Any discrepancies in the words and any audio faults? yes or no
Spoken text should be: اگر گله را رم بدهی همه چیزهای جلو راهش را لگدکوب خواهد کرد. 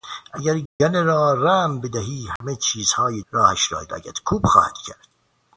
yes